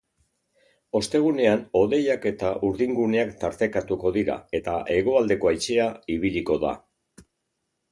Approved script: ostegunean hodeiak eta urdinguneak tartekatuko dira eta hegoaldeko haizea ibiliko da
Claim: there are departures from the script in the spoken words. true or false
false